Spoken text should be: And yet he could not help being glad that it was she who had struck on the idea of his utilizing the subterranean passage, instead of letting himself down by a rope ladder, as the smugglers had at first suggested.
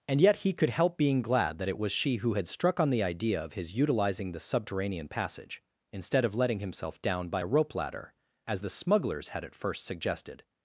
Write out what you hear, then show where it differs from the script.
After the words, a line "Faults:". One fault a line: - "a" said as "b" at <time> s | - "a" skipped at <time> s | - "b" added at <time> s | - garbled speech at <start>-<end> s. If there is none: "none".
And yet he could help being glad that it was she who had struck on the idea of his utilizing the subterranean passage, instead of letting himself down by a rope ladder, as the smugglers had at first suggested.
Faults:
- "not" skipped at 0.7 s